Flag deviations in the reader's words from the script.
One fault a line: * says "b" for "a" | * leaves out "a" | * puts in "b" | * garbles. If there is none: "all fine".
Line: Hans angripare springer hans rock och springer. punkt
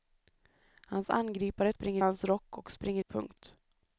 all fine